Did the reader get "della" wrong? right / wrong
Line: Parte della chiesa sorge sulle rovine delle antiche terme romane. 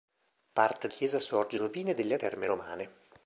wrong